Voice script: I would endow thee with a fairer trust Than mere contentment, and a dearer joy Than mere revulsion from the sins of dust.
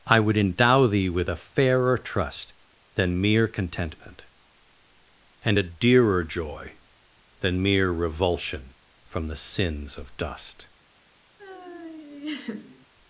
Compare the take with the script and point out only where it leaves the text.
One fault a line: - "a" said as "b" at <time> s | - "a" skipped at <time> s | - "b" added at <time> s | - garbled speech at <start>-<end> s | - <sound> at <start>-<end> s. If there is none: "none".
- laugh at 11.4-12.9 s